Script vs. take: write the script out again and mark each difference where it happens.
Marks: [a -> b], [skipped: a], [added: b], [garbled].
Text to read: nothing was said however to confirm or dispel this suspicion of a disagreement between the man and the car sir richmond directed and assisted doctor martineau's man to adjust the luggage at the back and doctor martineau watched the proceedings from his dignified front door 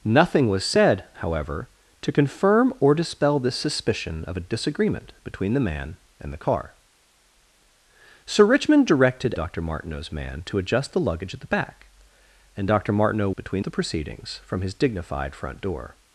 nothing was said however to confirm or dispel this suspicion of a disagreement between the man and the car sir richmond directed [skipped: and assisted] doctor martineau's man to adjust the luggage at the back and doctor martineau [watched -> between] the proceedings from his dignified front door